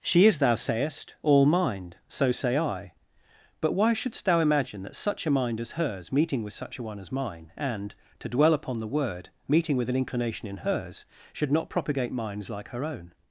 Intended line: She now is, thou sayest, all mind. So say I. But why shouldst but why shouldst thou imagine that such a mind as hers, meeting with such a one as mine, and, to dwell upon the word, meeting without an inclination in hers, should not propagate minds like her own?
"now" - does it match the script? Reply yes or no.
no